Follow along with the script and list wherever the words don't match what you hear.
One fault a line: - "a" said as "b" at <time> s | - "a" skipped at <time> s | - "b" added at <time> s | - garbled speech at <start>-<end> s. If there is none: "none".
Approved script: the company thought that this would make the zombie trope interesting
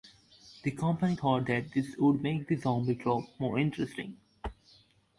- "more" added at 3.4 s